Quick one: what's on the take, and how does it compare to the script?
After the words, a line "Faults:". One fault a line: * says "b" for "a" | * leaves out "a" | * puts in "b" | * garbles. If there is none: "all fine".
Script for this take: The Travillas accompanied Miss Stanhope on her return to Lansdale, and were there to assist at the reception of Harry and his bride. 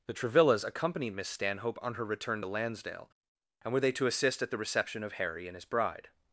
The Travillas accompanied Miss Stanhope on her return to Lansdale, and were they to assist at the reception of Harry and his bride.
Faults:
* says "they" for "there"